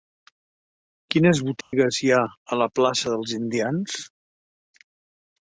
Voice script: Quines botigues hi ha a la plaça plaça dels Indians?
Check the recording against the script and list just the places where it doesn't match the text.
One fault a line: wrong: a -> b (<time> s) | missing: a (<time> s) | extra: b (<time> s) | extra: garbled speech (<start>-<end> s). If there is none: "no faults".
missing: plaça (3.1 s)